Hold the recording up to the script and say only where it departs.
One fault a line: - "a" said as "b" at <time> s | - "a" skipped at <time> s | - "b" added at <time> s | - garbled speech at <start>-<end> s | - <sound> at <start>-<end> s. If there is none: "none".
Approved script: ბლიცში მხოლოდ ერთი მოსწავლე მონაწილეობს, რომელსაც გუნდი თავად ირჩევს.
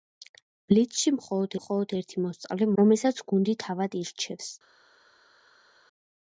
- "მხოლოდ" added at 1.6 s
- "მონაწილეობს" skipped at 2.7 s